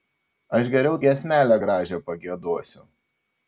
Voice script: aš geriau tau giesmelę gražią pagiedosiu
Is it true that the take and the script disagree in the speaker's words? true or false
true